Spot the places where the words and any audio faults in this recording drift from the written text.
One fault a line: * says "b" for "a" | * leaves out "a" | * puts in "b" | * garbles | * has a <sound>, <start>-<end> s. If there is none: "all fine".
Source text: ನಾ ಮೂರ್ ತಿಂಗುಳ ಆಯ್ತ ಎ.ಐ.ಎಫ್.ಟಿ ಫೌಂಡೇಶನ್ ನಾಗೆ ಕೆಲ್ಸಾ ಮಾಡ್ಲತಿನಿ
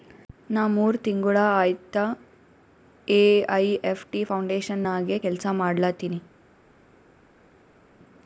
all fine